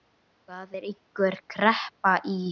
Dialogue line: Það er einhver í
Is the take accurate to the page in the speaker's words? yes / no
no